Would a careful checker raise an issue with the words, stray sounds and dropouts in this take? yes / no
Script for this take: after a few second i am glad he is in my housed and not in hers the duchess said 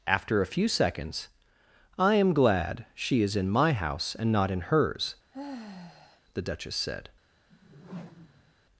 yes